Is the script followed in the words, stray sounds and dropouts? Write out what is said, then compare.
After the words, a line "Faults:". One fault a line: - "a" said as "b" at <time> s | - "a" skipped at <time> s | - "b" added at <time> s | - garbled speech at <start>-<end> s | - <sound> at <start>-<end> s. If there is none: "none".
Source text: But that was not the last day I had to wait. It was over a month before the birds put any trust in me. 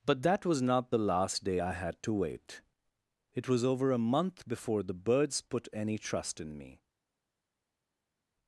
But that was not the last day I had to wait. It was over a month before the birds put any trust in me.
Faults:
none